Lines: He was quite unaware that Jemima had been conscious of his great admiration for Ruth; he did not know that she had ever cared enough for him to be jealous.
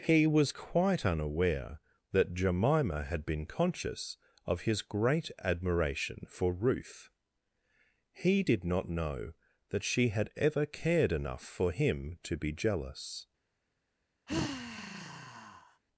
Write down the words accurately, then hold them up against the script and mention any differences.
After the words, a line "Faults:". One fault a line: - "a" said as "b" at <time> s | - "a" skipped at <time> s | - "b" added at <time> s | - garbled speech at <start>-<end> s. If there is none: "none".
He was quite unaware that Jemima had been conscious of his great admiration for Ruth; he did not know that she had ever cared enough for him to be jealous.
Faults:
none